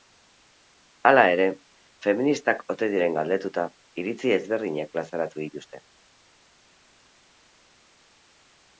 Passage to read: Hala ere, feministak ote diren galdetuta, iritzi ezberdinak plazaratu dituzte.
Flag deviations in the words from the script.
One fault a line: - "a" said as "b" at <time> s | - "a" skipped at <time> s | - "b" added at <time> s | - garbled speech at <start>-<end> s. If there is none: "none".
none